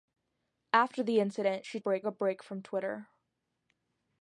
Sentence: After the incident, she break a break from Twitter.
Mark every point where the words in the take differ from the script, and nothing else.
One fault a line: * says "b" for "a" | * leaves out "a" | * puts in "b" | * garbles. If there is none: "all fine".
all fine